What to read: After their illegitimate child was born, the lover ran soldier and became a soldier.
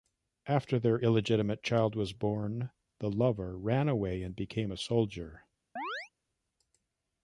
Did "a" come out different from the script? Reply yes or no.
no